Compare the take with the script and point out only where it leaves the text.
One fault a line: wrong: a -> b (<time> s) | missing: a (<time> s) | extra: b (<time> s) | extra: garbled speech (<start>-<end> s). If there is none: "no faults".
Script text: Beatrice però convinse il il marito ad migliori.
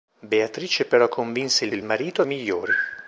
no faults